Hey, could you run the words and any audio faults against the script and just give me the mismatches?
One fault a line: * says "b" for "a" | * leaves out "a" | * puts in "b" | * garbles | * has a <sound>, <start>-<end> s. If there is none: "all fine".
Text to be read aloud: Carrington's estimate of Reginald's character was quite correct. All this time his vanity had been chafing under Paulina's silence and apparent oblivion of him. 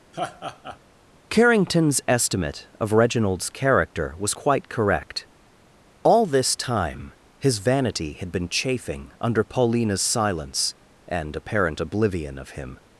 * has a laugh, 0.1-0.8 s